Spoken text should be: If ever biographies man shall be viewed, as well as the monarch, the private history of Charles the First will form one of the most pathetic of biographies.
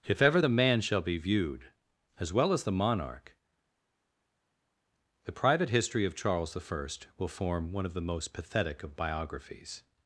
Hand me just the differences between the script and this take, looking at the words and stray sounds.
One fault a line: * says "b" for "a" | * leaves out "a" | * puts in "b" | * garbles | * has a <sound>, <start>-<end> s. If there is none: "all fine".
* says "the" for "biographies"